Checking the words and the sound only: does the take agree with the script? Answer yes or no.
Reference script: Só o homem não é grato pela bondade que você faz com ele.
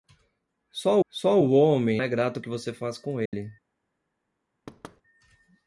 no